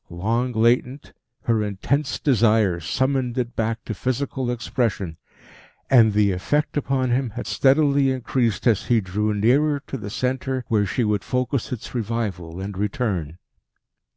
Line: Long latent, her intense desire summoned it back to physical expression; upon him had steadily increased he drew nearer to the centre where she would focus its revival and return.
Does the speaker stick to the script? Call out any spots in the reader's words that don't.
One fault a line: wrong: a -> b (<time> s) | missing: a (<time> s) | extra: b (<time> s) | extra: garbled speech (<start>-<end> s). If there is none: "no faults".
extra: and the effect (5.9 s)
extra: as (8.6 s)